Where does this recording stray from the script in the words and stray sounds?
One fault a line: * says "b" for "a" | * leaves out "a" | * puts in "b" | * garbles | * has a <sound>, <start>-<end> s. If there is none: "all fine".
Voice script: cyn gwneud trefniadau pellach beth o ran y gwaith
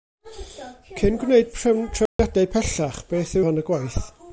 * has a dropout, 2.1-2.2 s